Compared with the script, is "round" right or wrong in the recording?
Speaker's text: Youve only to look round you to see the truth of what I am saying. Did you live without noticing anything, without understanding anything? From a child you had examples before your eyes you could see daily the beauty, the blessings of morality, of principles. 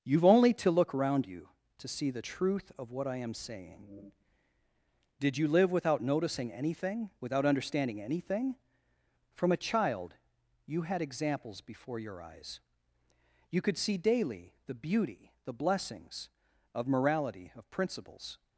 wrong